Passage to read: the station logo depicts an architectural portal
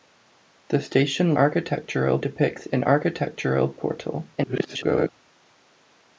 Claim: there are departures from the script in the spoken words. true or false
true